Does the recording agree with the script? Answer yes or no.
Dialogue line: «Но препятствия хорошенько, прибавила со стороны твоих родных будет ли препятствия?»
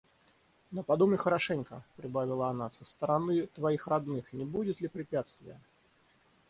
no